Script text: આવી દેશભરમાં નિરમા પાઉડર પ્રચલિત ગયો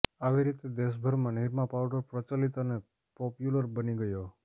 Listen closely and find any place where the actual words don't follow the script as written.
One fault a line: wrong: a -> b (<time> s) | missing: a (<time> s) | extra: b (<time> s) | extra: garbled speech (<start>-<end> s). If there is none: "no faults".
extra: રીતે (0.5 s)
extra: અને પોપ્યુલર બની (2.6 s)